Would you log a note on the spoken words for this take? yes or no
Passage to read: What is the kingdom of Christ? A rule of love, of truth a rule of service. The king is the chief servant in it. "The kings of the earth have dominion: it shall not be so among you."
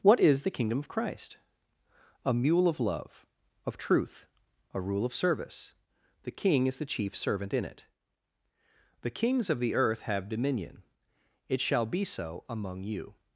yes